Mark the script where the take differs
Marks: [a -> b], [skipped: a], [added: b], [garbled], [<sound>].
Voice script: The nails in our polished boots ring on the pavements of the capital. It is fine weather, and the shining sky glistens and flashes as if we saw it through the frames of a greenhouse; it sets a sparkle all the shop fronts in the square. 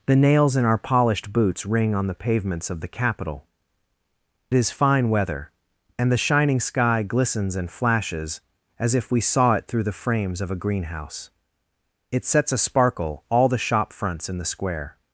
The nails in our polished boots ring on the pavements of the capital. [skipped: It] is fine weather, and the shining sky glistens and flashes as if we saw it through the frames of a greenhouse; it sets a sparkle all the shop fronts in the square.